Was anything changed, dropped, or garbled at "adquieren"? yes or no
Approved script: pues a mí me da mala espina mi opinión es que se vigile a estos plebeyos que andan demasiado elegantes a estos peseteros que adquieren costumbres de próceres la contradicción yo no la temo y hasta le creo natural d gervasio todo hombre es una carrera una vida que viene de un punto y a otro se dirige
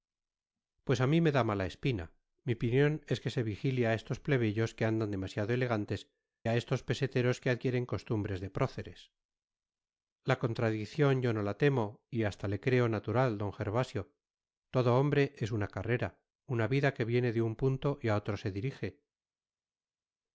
no